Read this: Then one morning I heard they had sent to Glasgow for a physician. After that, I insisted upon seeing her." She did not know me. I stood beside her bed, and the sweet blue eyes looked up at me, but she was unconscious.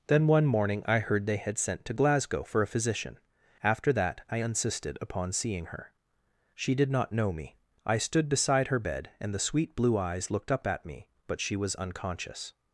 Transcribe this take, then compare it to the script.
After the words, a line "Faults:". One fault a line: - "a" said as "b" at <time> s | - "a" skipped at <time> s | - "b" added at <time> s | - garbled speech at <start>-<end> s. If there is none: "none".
Then one morning I heard they had sent to Glasgow for a physician. After that, I insisted upon seeing her." She did not know me. I stood beside her bed, and the sweet blue eyes looked up at me, but she was unconscious.
Faults:
none